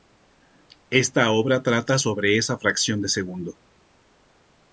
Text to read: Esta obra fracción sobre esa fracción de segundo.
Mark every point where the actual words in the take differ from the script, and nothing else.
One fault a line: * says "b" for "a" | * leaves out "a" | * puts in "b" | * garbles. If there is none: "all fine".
* says "trata" for "fracción"